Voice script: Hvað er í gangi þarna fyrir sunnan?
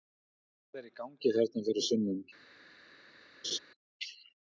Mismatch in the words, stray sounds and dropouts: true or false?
true